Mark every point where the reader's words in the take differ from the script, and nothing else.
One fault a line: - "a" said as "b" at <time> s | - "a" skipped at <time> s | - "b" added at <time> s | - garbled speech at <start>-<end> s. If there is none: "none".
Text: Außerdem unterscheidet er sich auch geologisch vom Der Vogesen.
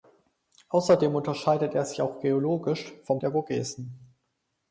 none